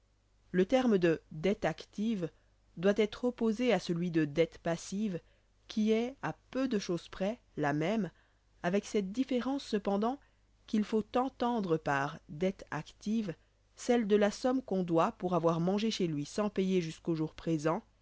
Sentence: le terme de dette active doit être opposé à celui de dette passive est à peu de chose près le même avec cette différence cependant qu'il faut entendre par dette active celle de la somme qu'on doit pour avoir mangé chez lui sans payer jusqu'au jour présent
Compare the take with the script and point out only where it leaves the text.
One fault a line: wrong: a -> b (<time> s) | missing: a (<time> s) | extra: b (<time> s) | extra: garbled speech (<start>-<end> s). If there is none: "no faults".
extra: qui (5.7 s)
wrong: le -> la (7.6 s)